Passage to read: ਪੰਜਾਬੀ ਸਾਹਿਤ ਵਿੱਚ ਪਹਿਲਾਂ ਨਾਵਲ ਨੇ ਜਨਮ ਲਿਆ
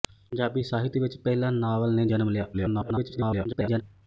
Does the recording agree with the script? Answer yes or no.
no